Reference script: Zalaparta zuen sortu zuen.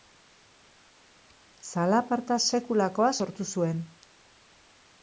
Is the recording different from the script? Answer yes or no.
yes